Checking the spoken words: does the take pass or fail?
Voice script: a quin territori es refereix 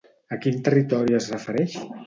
pass